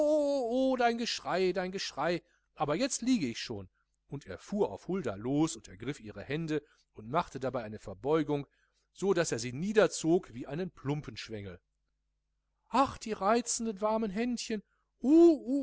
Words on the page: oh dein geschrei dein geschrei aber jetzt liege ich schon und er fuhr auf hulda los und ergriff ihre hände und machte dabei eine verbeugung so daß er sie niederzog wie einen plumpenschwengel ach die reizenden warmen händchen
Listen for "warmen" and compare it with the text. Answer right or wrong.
right